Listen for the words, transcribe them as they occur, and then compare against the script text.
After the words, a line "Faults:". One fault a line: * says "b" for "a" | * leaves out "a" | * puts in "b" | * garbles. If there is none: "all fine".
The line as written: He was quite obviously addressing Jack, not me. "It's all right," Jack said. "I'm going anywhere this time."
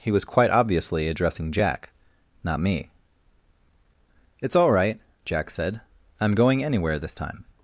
He was quite obviously addressing Jack, not me. "It's all right," Jack said. "I'm going anywhere this time."
Faults:
all fine